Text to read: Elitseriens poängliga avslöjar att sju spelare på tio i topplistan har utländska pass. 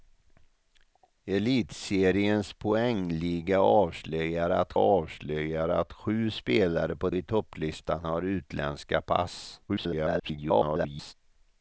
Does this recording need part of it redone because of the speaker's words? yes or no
yes